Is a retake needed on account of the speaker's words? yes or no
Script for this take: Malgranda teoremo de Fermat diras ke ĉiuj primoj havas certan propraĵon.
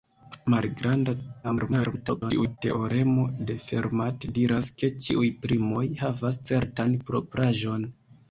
yes